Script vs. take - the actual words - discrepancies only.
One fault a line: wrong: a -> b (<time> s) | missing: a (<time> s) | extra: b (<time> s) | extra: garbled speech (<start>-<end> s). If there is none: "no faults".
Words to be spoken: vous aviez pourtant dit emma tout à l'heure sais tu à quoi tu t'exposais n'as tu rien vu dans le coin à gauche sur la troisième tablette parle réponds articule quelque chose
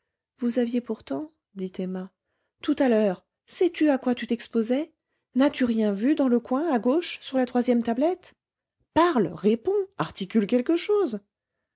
no faults